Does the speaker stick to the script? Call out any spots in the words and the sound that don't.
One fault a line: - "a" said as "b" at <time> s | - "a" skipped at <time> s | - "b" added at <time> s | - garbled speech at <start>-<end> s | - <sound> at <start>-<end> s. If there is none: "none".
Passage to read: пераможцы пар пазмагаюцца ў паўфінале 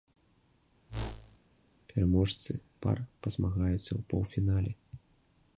- whoosh at 0.9-1.4 s